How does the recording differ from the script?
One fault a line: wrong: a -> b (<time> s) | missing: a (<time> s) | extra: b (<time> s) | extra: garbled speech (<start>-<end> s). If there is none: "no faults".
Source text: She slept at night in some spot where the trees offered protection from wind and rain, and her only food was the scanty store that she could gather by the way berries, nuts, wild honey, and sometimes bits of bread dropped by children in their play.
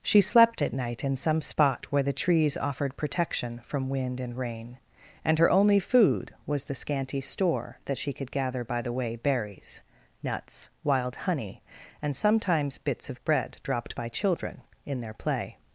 no faults